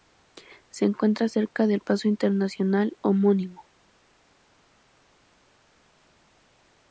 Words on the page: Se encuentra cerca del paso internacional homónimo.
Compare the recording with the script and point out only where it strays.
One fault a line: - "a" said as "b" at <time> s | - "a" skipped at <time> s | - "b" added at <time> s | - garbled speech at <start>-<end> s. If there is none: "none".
none